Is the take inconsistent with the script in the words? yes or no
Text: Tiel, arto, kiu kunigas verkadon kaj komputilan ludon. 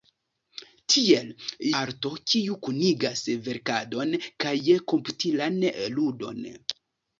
no